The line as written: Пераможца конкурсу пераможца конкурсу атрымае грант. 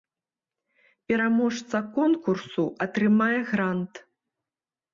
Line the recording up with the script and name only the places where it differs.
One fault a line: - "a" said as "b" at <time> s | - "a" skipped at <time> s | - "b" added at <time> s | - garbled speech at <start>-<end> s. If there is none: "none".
- "пераможца конкурсу" skipped at 2.6 s